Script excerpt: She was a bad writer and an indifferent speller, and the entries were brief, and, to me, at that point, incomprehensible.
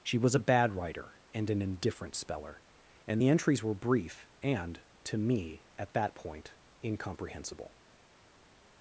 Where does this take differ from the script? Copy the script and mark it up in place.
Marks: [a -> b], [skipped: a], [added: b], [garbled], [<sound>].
She was a bad writer and an indifferent speller, and the entries were brief, and, to me, at that point, incomprehensible.